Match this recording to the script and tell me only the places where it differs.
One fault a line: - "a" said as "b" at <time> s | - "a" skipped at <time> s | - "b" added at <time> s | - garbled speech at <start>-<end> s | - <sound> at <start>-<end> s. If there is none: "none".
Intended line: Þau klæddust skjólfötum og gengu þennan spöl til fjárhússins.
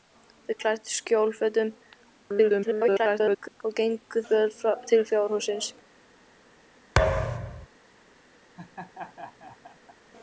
- garbled speech at 2.2-3.6 s
- "þennan" skipped at 4.2 s
- thud at 7.0-7.7 s
- laugh at 8.6-10.0 s